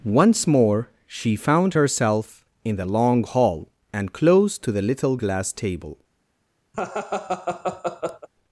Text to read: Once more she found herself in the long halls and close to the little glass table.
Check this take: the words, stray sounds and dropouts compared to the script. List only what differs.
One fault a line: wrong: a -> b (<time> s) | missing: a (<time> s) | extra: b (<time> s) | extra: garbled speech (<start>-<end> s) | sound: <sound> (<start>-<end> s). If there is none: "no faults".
wrong: halls -> hall (3.2 s)
sound: laugh (6.7-8.3 s)